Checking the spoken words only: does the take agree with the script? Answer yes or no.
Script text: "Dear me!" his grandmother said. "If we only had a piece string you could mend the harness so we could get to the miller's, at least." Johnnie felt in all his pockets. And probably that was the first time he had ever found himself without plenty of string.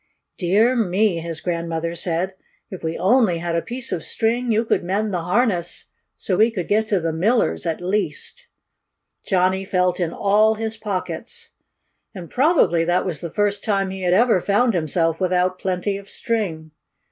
no